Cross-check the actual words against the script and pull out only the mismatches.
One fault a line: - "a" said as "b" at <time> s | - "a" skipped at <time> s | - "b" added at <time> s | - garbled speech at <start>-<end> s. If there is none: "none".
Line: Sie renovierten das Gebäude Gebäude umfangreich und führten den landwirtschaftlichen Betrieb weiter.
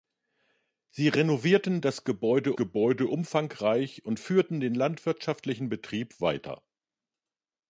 none